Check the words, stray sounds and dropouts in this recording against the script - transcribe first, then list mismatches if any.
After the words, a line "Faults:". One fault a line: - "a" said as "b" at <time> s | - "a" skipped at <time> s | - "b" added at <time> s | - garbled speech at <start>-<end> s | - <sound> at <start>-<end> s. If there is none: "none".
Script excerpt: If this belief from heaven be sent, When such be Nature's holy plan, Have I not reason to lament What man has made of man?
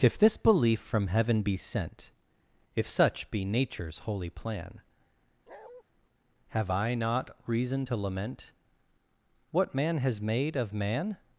If this belief from heaven be sent, If such be Nature's holy plan, Have I not reason to lament What man has made of man?
Faults:
- "When" said as "If" at 2.8 s
- bark at 5.5-5.8 s